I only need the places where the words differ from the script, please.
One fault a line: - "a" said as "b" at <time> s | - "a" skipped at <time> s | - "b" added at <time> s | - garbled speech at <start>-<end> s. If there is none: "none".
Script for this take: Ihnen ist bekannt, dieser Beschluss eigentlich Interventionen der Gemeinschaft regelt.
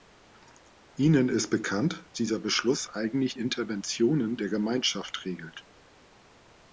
none